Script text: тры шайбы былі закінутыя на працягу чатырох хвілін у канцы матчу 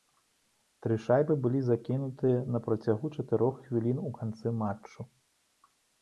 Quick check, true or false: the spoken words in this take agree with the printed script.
true